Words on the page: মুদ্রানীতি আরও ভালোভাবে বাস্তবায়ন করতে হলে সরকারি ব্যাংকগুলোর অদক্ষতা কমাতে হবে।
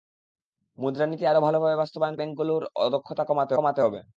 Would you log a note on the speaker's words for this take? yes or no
yes